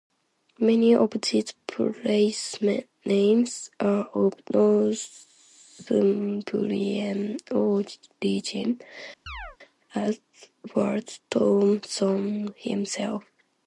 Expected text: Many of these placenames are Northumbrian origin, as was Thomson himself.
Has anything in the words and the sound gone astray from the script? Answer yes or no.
yes